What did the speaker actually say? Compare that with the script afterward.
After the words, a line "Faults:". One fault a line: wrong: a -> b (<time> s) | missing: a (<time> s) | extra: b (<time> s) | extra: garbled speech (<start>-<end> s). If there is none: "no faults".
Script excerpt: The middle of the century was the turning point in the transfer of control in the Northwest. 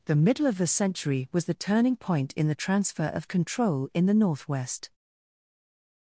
The middle of the century was the turning point in the transfer of control in the Northwest.
Faults:
no faults